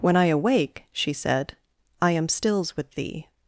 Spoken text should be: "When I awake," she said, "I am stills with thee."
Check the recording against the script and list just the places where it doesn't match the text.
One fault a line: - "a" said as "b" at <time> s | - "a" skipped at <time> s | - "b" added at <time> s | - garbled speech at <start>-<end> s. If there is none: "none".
none